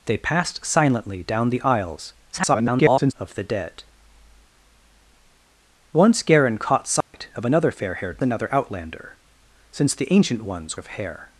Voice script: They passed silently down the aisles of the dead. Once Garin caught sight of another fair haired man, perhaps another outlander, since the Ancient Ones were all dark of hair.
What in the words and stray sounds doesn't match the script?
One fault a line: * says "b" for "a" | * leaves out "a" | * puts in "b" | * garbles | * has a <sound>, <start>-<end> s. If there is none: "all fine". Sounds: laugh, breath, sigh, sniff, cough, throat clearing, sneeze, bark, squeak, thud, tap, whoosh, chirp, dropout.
* garbles
* has a dropout, 7.0-7.1 s
* leaves out "man perhaps"
* leaves out "were all dark"